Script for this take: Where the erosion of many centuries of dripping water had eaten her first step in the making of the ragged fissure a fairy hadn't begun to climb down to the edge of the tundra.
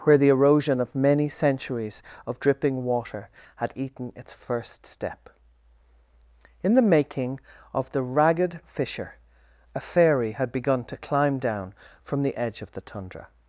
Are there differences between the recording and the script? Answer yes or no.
yes